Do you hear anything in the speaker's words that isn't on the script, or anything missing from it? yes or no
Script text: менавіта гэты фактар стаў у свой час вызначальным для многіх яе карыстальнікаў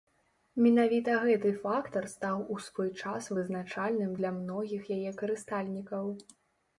no